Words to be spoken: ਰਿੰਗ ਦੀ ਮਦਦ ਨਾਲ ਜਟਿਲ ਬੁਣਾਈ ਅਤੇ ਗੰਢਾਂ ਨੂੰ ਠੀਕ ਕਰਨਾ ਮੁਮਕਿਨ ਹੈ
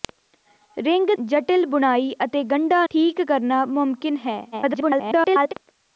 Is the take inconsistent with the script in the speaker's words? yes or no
yes